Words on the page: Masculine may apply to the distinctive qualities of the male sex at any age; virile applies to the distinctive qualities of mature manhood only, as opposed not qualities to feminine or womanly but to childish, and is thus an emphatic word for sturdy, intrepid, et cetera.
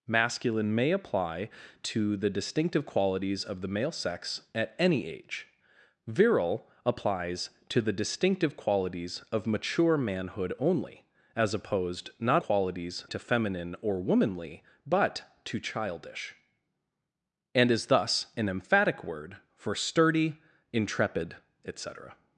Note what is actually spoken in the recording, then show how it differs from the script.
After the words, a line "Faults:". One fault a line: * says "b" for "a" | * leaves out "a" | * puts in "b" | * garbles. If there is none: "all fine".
Masculine may apply to the distinctive qualities of the male sex at any age; virile applies to the distinctive qualities of mature manhood only, as opposed not qualities to feminine or womanly but to childish, and is thus an emphatic word for sturdy, intrepid, et cetera.
Faults:
all fine